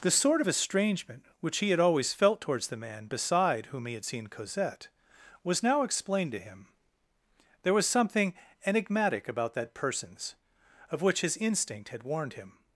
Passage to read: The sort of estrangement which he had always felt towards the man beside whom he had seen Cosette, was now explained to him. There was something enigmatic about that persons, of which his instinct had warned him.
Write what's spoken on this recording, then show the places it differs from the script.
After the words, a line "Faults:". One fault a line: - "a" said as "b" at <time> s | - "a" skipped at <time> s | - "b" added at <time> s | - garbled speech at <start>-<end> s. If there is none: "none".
The sort of estrangement which he had always felt towards the man beside whom he had seen Cosette, was now explained to him. There was something enigmatic about that persons, of which his instinct had warned him.
Faults:
none